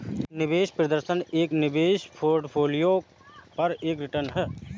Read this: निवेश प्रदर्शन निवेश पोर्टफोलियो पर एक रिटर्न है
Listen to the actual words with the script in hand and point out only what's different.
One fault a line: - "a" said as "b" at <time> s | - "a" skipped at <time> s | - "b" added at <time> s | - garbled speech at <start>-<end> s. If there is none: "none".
- "एक" added at 1.3 s